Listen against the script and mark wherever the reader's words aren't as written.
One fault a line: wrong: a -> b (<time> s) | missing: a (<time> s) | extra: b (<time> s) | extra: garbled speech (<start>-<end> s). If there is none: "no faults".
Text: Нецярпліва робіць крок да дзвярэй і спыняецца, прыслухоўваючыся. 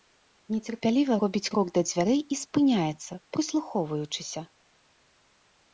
no faults